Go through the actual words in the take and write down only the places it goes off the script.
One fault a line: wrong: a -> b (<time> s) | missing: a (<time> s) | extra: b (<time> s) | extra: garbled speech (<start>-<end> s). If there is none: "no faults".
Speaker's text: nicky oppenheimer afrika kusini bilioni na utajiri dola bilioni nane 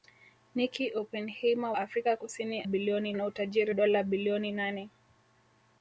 no faults